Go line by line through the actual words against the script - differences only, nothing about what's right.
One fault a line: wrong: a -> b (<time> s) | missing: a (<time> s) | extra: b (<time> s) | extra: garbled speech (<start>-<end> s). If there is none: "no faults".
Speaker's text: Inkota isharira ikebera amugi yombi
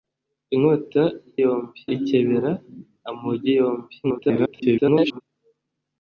wrong: isharira -> yombi (1.4 s)
extra: garbled speech (4.0-5.2 s)